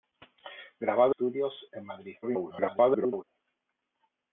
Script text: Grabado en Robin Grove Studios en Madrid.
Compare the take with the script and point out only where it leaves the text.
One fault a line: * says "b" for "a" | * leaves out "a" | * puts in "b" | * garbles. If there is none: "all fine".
* leaves out "en Robin Grove"
* garbles